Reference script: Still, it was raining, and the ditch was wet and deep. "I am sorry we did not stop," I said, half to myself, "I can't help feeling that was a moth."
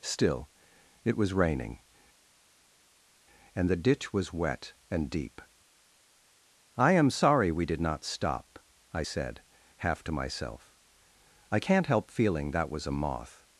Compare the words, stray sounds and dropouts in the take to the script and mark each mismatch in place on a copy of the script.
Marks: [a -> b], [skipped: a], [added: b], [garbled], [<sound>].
Still, it was raining, and the ditch was wet and deep. "I am sorry we did not stop," I said, half to myself, "I can't help feeling that was a moth."